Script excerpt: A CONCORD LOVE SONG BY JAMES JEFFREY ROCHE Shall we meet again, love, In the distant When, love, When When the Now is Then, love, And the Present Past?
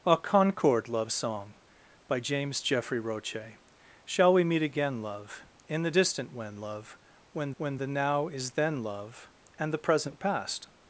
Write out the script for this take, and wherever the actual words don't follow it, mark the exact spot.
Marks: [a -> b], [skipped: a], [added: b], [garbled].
A CONCORD LOVE SONG BY JAMES JEFFREY ROCHE Shall we meet again, love, In the distant When, love, When When the Now is Then, love, And the Present Past?